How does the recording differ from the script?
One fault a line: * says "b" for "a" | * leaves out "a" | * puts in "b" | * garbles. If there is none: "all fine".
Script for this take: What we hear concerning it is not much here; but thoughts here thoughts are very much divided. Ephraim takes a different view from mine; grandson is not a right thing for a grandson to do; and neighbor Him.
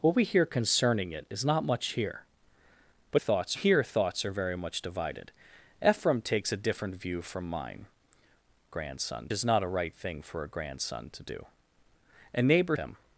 all fine